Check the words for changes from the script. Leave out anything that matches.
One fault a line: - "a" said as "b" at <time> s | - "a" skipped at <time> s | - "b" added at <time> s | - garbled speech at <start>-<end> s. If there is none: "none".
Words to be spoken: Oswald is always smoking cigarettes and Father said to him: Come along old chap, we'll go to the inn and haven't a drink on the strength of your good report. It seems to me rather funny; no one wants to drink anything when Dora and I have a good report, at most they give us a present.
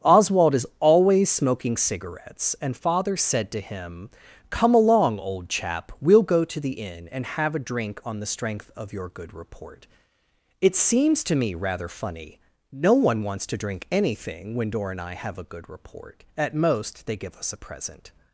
- "haven't" said as "have" at 7.4 s